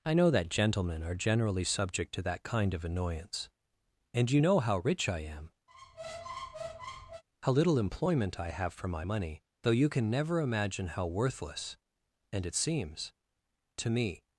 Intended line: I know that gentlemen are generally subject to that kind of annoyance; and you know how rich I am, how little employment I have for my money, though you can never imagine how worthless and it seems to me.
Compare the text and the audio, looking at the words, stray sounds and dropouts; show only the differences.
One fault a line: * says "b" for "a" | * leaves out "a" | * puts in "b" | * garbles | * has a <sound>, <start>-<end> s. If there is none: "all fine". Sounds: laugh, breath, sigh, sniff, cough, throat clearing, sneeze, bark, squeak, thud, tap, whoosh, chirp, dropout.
* has a squeak, 5.7-7.2 s